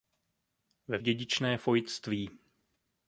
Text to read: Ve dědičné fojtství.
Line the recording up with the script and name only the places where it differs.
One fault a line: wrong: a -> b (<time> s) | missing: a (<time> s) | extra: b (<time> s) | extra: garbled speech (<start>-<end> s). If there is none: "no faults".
no faults